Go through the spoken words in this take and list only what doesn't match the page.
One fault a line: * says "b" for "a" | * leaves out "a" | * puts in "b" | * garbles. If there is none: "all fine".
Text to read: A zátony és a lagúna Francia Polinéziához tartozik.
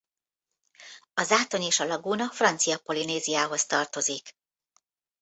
all fine